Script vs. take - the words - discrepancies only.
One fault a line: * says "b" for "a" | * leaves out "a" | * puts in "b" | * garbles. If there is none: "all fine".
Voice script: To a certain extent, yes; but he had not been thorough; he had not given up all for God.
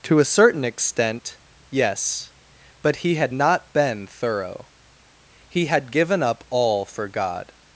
* leaves out "not"